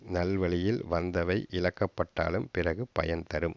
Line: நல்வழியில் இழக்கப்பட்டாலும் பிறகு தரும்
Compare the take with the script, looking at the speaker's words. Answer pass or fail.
fail